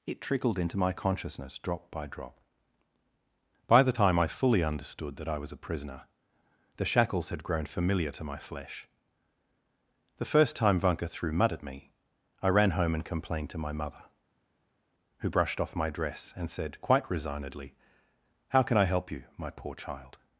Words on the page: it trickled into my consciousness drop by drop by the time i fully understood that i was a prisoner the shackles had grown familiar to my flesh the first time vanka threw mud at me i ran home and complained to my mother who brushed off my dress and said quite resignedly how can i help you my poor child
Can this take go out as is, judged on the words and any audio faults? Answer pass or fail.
pass